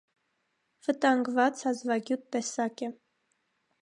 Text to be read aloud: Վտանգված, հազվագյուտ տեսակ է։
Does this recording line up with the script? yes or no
yes